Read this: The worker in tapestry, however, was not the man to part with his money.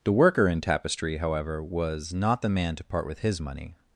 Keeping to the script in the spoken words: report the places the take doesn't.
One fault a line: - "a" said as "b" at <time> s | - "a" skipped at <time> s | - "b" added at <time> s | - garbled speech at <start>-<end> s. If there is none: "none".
none